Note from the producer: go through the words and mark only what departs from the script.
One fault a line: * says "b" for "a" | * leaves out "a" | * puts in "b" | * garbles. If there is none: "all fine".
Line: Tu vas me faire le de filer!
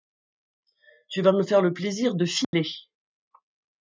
* puts in "plaisir"